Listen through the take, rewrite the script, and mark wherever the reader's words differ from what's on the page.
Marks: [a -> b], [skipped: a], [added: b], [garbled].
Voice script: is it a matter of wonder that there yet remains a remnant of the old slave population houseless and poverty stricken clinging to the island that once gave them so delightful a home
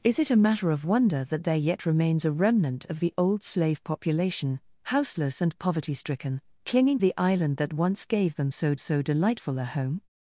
is it a matter of wonder that there yet remains a remnant of the old slave population houseless and poverty stricken clinging [skipped: to] the island that once gave them so [added: so] delightful a home